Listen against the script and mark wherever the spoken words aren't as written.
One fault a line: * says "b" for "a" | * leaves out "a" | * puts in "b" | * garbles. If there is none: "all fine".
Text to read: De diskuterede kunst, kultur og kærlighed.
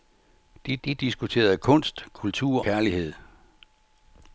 * puts in "de"
* leaves out "og"